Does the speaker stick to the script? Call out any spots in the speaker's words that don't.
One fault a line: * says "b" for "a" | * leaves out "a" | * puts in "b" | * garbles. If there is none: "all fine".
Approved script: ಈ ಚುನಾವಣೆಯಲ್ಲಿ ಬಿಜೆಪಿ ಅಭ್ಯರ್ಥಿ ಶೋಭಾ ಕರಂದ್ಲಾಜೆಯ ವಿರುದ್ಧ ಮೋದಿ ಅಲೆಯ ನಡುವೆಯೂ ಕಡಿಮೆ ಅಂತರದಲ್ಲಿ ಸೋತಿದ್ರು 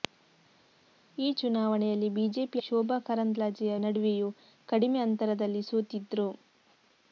* leaves out "ಅಭ್ಯರ್ಥಿ"
* leaves out "ವಿರುದ್ಧ ಮೋದಿ ಅಲೆಯ"